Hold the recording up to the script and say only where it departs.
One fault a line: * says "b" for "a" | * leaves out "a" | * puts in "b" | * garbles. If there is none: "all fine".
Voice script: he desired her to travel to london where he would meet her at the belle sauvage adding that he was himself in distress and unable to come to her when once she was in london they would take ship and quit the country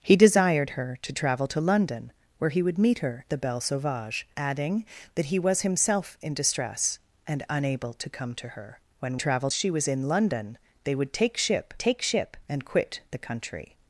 * leaves out "at"
* says "travel" for "once"
* puts in "take ship"